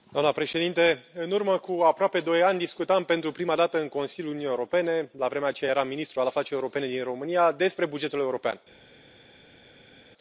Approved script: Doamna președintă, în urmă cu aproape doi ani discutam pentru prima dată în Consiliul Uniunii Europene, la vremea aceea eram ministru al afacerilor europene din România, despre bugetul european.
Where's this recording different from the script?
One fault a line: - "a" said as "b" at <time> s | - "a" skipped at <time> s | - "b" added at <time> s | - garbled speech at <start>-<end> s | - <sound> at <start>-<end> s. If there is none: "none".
none